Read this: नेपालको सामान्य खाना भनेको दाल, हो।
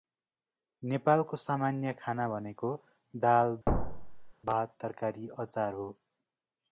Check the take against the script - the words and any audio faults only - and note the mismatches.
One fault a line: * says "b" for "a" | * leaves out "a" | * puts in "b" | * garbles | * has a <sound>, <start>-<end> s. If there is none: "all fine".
* has a thud, 3.7-4.3 s
* puts in "भात तरकारी अचार"